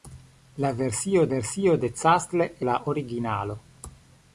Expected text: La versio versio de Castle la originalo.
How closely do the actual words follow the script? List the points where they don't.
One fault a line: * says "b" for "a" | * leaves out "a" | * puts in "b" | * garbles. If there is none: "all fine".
all fine